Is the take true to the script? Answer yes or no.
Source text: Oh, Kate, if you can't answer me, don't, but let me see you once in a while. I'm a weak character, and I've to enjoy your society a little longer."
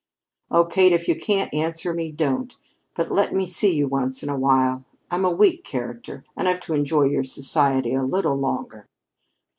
yes